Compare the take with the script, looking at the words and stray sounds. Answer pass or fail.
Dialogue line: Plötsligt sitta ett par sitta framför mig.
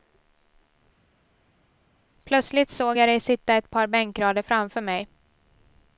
fail